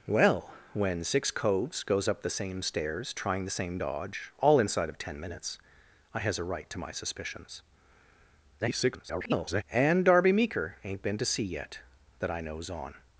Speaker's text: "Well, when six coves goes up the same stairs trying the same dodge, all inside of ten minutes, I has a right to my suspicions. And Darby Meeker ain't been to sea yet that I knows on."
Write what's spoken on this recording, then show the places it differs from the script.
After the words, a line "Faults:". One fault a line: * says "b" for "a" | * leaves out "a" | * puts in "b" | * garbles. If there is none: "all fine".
"Well, when six coves goes up the same stairs trying the same dodge, all inside of ten minutes, I has a right to my suspicions. [garbled] And Darby Meeker ain't been to sea yet that I knows on."
Faults:
* garbles